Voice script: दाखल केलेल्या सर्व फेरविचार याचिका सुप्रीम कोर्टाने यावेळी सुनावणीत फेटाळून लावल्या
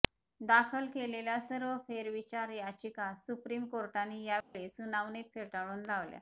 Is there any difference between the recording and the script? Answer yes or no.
no